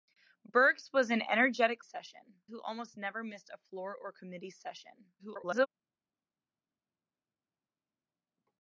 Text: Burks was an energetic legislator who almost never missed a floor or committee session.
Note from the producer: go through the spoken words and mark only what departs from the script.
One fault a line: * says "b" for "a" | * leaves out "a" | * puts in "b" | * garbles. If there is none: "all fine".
* says "session" for "legislator"
* garbles